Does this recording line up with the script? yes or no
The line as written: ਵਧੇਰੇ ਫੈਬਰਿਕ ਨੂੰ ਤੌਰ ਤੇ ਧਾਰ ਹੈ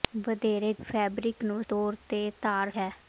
yes